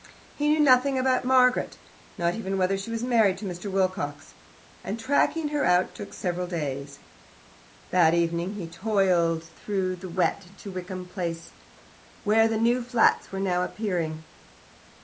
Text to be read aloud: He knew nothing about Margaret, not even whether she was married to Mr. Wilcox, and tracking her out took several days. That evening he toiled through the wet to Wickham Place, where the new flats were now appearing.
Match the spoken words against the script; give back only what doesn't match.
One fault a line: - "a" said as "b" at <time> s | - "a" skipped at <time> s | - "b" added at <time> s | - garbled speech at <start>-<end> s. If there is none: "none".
none